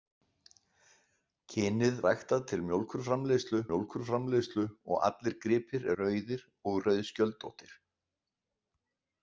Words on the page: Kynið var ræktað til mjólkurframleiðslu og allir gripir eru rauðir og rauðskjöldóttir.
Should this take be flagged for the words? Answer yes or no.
yes